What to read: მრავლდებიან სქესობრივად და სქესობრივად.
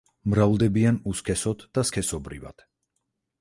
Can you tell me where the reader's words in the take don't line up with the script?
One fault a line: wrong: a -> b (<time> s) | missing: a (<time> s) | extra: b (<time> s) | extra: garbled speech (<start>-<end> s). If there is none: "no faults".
wrong: სქესობრივად -> უსქესოდ (1.1 s)